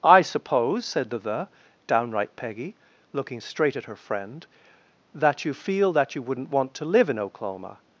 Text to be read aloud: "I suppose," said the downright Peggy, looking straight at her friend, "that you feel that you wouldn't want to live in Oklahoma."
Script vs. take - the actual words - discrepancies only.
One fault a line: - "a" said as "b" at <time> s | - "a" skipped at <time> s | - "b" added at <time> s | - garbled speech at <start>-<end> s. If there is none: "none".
- "the" added at 1.2 s